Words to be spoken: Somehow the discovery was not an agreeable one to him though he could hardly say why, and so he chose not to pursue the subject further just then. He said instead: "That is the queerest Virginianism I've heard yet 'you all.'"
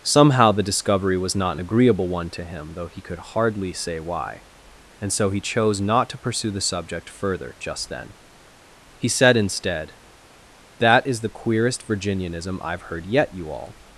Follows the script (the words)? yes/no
yes